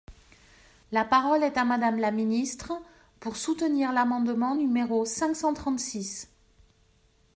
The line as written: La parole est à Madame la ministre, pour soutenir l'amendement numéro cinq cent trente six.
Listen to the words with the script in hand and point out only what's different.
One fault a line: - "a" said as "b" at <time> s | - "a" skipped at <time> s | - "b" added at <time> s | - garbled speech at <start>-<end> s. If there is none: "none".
none